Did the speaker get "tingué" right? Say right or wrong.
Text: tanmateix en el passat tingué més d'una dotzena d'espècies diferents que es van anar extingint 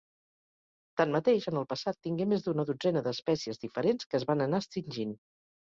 right